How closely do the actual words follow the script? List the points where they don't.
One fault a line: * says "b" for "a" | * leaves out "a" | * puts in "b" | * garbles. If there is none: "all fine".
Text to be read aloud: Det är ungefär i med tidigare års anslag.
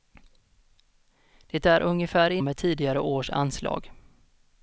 all fine